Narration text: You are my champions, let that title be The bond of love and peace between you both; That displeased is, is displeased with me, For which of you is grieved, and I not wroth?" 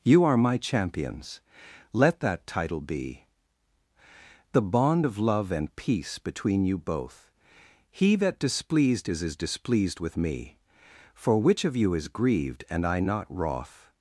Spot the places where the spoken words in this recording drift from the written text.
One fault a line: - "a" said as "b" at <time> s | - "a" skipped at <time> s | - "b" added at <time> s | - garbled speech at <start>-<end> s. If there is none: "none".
- "He" added at 7.9 s